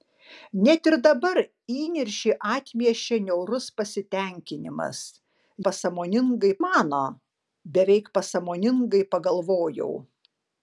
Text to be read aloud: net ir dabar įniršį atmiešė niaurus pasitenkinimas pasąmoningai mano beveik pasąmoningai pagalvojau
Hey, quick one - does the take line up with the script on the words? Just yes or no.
yes